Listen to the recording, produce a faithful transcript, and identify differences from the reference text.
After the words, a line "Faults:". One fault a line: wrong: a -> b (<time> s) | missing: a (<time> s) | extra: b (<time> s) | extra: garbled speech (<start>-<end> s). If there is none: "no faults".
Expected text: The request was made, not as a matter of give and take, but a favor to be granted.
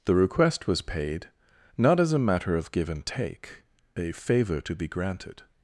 The request was paid, not as a matter of give and take, a favor to be granted.
Faults:
wrong: made -> paid (0.8 s)
missing: but (3.6 s)